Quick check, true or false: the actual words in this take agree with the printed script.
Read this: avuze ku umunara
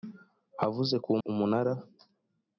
true